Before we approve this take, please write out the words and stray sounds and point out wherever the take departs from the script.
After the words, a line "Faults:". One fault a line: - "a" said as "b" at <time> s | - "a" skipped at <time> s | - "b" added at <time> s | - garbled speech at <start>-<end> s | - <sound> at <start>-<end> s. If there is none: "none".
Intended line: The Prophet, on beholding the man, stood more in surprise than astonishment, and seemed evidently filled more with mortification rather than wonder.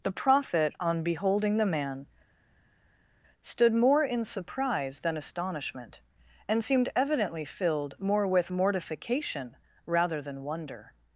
The Prophet, on beholding the man, stood more in surprise than astonishment, and seemed evidently filled more with mortification rather than wonder.
Faults:
none